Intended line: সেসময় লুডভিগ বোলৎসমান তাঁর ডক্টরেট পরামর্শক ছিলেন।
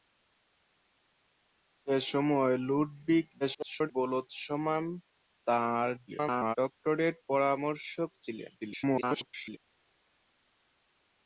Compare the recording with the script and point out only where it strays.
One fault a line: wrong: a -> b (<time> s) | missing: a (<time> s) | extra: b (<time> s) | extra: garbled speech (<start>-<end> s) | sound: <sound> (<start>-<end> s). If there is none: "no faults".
extra: garbled speech (3.4-3.9 s)
extra: garbled speech (6.1-6.6 s)
extra: garbled speech (8.6-9.6 s)